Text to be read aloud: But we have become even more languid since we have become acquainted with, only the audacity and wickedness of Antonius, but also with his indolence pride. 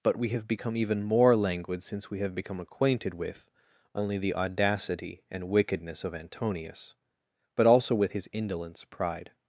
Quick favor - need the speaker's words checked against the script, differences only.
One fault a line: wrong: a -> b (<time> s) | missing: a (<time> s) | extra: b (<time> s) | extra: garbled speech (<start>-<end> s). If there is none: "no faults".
no faults